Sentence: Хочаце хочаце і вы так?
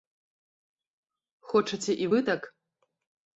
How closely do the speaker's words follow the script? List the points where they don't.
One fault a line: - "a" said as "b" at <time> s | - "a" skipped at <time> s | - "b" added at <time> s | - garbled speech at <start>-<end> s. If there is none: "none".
- "хочаце" skipped at 1.9 s